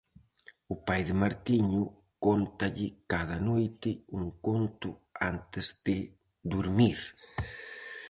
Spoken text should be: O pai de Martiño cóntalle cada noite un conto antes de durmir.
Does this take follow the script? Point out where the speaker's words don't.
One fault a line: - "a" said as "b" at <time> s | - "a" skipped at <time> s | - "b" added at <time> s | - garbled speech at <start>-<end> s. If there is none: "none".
none